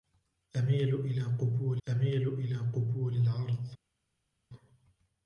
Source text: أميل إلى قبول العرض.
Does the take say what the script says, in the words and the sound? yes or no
no